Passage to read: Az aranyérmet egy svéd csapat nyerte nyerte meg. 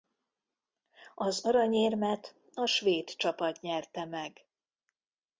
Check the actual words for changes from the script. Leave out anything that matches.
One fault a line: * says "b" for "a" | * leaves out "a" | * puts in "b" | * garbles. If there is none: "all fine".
* says "a" for "egy"
* leaves out "nyerte"